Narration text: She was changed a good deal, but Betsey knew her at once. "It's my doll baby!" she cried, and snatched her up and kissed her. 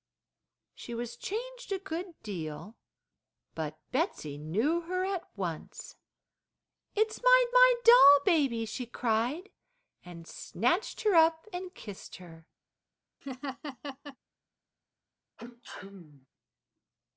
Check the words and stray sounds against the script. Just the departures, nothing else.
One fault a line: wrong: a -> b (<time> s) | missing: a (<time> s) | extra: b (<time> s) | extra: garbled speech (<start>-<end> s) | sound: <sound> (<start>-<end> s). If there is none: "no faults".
extra: my (7.5 s)
sound: laugh (13.2-14.2 s)
sound: sneeze (15.4-16.3 s)